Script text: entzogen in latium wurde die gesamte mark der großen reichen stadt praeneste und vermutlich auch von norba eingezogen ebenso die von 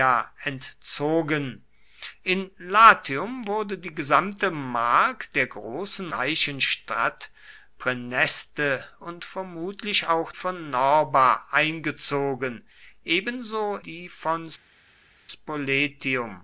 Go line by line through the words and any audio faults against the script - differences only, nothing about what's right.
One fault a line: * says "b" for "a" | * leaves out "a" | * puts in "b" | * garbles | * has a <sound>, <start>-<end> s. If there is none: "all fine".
all fine